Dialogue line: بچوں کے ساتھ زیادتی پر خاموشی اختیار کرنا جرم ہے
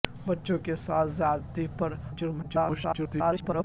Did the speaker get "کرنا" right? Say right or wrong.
wrong